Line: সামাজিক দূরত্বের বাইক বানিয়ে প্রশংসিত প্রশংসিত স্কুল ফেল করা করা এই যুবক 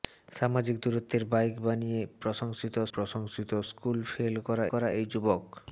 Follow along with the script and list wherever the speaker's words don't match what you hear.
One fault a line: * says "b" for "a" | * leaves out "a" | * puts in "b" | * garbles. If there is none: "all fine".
all fine